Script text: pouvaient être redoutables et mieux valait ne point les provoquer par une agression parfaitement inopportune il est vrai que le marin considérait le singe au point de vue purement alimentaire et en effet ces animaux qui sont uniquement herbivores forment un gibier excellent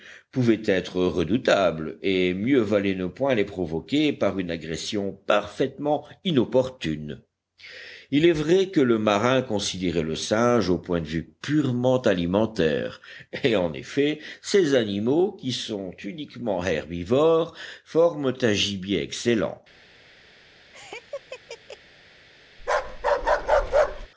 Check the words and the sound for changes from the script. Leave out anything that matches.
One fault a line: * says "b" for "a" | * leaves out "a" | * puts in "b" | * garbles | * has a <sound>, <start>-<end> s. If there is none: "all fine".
* has a laugh, 20.7-21.8 s
* has a bark, 22.6-24.1 s